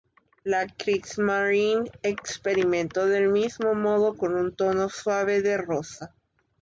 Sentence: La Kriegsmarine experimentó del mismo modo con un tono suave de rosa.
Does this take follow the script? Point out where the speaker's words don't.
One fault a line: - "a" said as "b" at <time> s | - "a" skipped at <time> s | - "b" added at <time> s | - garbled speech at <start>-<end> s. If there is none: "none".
none